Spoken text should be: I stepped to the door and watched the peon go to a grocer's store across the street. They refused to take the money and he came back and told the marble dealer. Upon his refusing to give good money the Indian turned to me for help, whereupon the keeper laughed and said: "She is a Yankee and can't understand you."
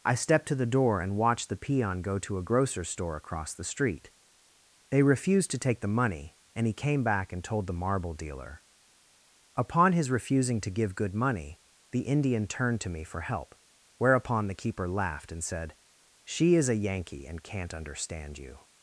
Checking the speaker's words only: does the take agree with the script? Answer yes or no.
yes